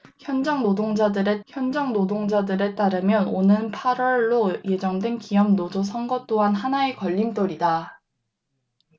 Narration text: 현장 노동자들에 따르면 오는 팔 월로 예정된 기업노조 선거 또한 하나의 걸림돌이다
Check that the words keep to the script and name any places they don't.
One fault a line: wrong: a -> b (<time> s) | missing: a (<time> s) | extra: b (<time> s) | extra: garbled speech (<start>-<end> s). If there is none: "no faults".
extra: 현장 노동자들에 (1.5 s)